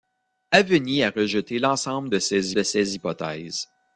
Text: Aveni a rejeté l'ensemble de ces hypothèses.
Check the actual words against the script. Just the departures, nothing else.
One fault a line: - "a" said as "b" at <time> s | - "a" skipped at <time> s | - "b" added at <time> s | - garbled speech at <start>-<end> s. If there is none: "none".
- "de ces" added at 2.5 s